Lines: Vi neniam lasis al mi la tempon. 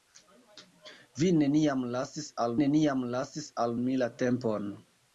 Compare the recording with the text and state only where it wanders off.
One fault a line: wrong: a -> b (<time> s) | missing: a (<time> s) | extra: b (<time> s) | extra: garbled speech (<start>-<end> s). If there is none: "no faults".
extra: neniam lasis al (2.6 s)